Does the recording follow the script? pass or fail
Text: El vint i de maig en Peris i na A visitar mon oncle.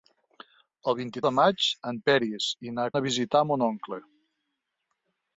pass